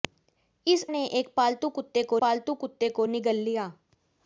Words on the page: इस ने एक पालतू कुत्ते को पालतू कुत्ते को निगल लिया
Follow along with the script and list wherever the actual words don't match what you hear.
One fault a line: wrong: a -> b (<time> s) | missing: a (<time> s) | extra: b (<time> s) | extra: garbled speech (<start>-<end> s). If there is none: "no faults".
no faults